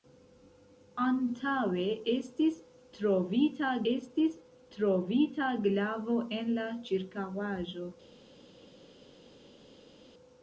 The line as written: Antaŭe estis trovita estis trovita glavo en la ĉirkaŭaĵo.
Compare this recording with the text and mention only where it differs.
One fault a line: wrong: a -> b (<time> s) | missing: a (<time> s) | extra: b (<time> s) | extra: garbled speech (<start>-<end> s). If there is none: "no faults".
no faults